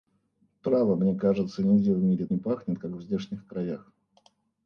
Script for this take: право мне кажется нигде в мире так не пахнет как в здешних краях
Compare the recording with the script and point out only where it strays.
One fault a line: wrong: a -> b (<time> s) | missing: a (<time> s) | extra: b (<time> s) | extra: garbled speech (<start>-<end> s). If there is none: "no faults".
missing: так (2.2 s)